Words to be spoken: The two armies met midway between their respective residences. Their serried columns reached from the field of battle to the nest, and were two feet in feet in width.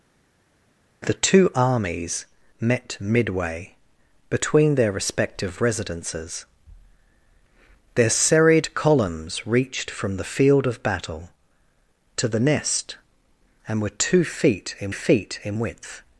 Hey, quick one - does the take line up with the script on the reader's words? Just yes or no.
yes